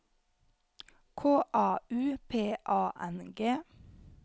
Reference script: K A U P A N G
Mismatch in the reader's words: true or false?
false